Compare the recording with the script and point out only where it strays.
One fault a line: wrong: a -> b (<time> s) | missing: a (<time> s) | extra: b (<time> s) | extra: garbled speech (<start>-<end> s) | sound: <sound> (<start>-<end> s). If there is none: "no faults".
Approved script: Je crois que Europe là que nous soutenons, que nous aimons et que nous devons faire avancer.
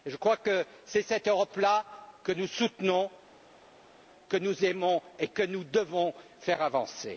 extra: c'est cette (0.8 s)